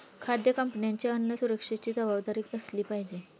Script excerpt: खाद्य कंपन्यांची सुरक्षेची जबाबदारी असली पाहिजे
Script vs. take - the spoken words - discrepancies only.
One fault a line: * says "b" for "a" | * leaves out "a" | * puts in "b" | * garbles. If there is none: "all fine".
* puts in "अन्न"